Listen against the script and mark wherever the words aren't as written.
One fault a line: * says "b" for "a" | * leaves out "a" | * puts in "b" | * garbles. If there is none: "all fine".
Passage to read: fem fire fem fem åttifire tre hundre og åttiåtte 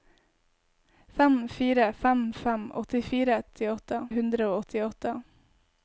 * says "åttiåtte" for "tre"